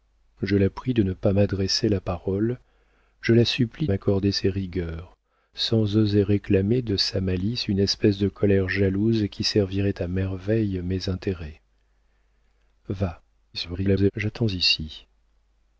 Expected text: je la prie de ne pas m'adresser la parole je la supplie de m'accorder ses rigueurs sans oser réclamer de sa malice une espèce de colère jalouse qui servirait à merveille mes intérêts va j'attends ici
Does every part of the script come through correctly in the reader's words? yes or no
no